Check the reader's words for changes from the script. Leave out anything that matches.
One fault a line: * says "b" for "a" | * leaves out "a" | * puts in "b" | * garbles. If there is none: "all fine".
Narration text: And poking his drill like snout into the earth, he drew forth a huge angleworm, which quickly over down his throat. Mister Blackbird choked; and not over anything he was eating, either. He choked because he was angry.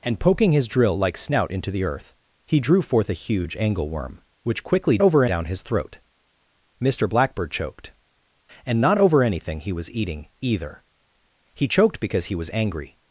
all fine